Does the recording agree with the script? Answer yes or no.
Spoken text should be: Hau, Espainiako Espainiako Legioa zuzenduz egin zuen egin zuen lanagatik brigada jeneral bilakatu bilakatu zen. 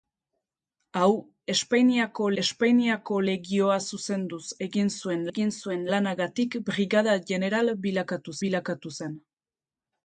yes